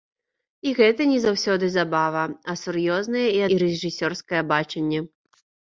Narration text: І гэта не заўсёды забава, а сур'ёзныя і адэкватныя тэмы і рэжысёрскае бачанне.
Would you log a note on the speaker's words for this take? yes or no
yes